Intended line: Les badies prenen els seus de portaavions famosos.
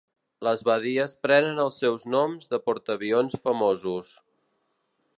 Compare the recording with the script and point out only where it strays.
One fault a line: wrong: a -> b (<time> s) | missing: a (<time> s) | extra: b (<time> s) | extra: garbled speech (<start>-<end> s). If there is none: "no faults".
extra: noms (2.1 s)